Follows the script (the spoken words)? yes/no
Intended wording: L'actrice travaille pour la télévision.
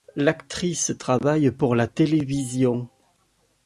yes